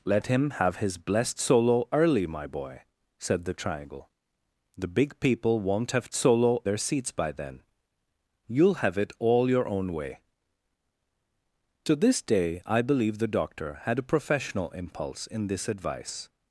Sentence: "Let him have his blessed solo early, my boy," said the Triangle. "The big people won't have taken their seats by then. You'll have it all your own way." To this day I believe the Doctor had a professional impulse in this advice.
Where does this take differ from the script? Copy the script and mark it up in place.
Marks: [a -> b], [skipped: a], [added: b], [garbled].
"Let him have his blessed solo early, my boy," said the Triangle. "The big people won't have [taken -> solo] their seats by then. You'll have it all your own way." To this day I believe the Doctor had a professional impulse in this advice.